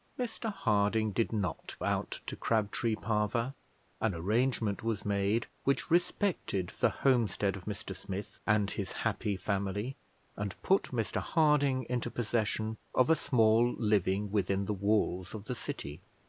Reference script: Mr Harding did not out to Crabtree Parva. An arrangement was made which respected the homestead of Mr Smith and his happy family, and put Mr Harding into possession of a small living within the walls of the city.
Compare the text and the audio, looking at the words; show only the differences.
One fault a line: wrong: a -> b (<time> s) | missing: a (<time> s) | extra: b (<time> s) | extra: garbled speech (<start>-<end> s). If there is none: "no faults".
no faults